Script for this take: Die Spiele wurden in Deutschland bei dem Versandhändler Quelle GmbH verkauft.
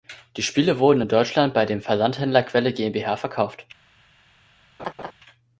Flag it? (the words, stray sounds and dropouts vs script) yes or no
yes